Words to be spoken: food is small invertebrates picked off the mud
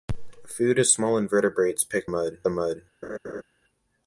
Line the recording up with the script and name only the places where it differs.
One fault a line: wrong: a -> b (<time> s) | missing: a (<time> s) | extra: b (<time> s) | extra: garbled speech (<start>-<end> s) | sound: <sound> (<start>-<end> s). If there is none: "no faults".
wrong: off -> mud (2.0 s)
sound: laugh (3.0-3.4 s)